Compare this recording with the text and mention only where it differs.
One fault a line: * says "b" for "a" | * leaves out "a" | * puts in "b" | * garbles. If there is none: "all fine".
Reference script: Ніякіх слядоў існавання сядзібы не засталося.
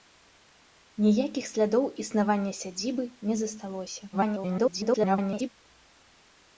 * garbles